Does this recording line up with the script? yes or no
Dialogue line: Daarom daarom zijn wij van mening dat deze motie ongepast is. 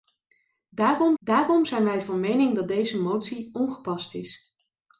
yes